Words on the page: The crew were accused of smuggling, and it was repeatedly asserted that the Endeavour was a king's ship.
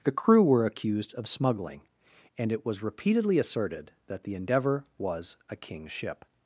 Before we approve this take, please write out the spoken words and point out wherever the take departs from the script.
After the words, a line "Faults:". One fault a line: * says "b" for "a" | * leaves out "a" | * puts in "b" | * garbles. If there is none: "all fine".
The crew were accused of smuggling, and it was repeatedly asserted that the Endeavour was a king's ship.
Faults:
all fine